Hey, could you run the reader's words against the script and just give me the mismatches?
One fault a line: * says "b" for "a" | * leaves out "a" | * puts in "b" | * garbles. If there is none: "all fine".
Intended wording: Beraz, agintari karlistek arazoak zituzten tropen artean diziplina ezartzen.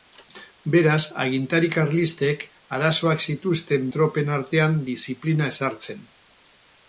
all fine